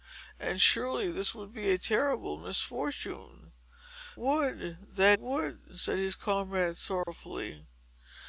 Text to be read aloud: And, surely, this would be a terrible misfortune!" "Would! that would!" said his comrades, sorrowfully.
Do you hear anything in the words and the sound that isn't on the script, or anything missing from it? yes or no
yes